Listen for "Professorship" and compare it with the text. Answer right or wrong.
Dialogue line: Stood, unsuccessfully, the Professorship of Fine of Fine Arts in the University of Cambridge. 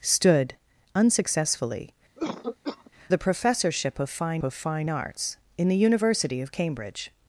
right